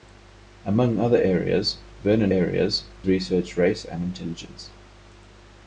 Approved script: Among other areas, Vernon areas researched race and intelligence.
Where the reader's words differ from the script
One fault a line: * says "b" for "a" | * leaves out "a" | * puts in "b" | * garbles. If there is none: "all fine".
all fine